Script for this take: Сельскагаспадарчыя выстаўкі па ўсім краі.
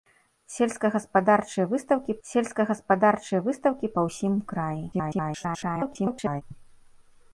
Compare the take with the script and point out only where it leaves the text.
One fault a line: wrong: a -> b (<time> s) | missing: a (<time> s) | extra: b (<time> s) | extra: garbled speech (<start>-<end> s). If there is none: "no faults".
extra: сельскагаспадарчыя выстаўкі (2.3 s)
extra: garbled speech (4.9-6.4 s)